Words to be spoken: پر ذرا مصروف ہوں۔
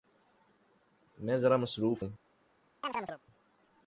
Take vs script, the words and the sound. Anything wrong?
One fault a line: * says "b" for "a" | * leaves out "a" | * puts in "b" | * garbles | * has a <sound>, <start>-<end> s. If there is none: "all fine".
* says "میں" for "پر"
* has a chirp, 2.8-3.2 s